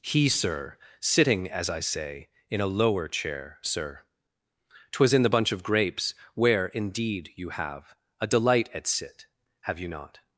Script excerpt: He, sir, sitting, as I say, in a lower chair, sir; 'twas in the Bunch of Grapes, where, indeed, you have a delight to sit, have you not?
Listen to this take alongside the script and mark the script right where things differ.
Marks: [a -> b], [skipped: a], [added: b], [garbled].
He, sir, sitting, as I say, in a lower chair, sir; 'twas in the Bunch of Grapes, where, indeed, you have a delight [to -> at] sit, have you not?